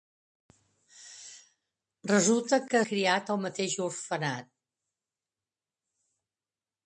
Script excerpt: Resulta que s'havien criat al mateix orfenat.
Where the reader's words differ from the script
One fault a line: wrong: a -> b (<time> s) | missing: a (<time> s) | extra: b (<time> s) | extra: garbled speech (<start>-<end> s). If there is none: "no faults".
missing: s'havien (2.8 s)